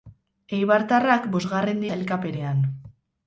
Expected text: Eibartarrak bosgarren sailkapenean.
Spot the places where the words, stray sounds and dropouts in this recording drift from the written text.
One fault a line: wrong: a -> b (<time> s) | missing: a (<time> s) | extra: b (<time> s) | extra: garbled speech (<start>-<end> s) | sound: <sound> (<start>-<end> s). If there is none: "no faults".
no faults